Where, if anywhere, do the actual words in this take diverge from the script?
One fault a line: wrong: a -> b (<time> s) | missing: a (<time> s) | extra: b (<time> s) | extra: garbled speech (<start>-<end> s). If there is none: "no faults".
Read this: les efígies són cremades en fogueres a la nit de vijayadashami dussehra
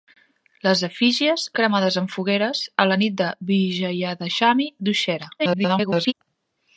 missing: són (1.4 s)
extra: garbled speech (5.4-6.1 s)